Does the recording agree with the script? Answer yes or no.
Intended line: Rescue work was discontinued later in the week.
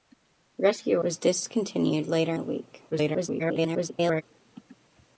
no